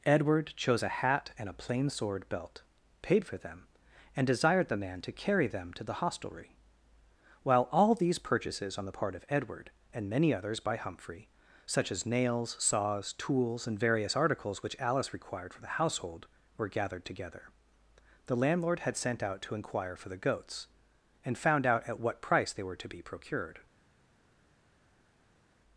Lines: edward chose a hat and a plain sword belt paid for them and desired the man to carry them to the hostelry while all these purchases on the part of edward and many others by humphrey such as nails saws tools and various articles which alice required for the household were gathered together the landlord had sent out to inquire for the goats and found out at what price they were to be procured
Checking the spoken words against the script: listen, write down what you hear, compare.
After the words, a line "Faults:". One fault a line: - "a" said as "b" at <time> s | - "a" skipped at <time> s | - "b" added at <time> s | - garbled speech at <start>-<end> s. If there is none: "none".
edward chose a hat and a plain sword belt paid for them and desired the man to carry them to the hostelry while all these purchases on the part of edward and many others by humphrey such as nails saws tools and various articles which alice required for the household were gathered together the landlord had sent out to inquire for the goats and found out at what price they were to be procured
Faults:
none